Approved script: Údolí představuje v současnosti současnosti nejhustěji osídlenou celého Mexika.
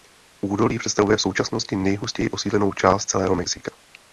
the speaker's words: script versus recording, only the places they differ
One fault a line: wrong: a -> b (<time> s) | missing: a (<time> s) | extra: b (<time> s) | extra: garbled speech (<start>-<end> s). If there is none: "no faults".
missing: současnosti (1.8 s)
extra: část (2.7 s)